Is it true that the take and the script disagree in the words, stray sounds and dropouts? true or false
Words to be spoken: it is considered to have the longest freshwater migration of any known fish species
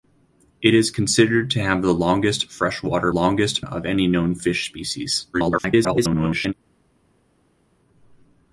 true